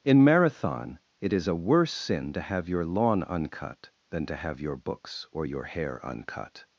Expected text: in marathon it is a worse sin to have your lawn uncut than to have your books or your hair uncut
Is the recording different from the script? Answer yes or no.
no